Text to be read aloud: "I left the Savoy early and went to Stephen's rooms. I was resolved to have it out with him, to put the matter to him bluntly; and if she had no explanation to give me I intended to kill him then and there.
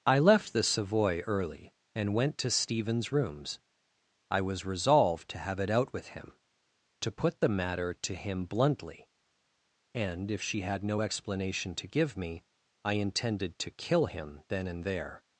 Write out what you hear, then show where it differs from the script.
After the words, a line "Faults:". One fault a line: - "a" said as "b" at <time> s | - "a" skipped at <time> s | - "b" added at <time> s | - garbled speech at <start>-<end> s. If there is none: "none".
"I left the Savoy early and went to Stephen's rooms. I was resolved to have it out with him, to put the matter to him bluntly; and if she had no explanation to give me I intended to kill him then and there.
Faults:
none